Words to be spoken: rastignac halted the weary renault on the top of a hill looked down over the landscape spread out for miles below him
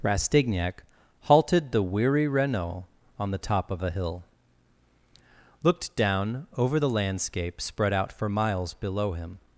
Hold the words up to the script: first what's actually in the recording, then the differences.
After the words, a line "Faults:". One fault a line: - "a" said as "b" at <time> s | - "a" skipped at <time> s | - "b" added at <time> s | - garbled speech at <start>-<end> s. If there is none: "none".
rastignac halted the weary renault on the top of a hill looked down over the landscape spread out for miles below him
Faults:
none